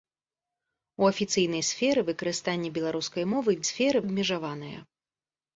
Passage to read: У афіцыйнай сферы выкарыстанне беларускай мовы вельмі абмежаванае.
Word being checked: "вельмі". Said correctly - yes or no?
no